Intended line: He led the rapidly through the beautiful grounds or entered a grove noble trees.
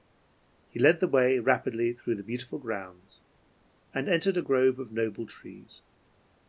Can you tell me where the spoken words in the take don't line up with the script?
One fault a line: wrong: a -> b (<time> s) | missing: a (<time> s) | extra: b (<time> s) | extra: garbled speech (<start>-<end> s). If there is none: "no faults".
extra: way (1.1 s)
wrong: or -> and (3.9 s)
extra: of (4.8 s)